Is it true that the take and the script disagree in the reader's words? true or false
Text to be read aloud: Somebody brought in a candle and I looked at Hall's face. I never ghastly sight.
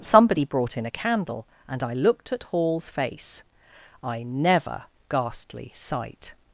false